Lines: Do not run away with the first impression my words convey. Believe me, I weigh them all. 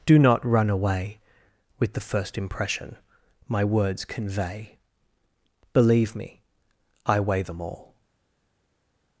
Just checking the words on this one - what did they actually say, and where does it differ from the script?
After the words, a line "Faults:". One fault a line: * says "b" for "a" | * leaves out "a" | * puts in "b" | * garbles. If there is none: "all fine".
Do not run away with the first impression my words convey. Believe me, I weigh them all.
Faults:
all fine